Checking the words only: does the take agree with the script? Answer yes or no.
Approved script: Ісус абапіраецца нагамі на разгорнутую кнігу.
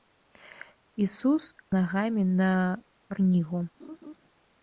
no